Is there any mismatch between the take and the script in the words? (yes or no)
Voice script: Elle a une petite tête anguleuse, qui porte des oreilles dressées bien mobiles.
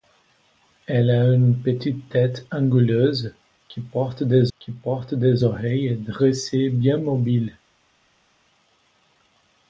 yes